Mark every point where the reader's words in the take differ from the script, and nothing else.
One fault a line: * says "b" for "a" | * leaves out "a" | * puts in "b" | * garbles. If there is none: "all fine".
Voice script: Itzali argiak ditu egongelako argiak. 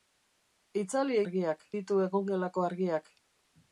all fine